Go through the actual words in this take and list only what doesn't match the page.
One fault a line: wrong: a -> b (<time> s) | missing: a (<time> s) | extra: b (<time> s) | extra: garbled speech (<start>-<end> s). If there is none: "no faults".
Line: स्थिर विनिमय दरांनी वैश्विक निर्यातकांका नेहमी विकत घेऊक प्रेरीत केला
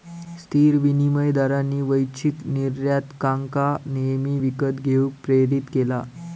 no faults